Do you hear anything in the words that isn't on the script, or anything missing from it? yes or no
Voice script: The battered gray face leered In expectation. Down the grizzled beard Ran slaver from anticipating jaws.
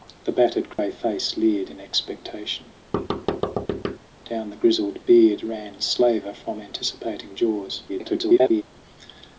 yes